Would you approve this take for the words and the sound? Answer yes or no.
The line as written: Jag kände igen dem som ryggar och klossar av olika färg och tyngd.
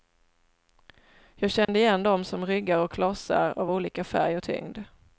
no